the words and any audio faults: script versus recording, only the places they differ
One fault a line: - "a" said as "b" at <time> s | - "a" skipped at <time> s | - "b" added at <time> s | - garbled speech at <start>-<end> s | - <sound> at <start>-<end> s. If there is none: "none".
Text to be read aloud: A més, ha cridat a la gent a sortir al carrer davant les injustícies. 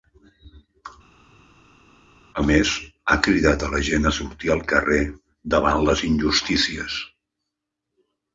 none